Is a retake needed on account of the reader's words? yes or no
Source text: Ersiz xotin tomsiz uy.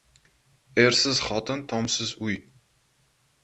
no